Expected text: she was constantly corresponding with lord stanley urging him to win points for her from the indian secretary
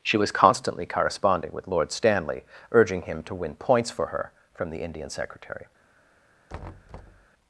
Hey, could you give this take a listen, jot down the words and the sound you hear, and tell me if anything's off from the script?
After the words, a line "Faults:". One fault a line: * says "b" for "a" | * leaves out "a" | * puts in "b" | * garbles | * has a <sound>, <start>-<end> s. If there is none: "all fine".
she was constantly corresponding with lord stanley urging him to win points for her from the indian secretary
Faults:
* has a thud, 6.5-7.3 s